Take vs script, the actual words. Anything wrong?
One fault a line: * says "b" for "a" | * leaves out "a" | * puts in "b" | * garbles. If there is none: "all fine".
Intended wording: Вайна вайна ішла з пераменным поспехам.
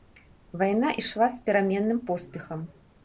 * leaves out "вайна"